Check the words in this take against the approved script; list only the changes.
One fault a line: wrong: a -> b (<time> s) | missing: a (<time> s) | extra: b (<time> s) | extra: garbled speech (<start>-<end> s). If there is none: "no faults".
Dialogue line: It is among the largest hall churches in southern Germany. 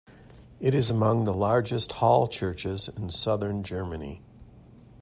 no faults